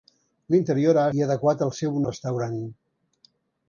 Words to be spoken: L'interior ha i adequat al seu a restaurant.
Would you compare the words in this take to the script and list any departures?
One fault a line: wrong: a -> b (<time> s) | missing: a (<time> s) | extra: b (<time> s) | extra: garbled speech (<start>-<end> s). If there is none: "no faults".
no faults